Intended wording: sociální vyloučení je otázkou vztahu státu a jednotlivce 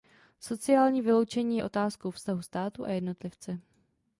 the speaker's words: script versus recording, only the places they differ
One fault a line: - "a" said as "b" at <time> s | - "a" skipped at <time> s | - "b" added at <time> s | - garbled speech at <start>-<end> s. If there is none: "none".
none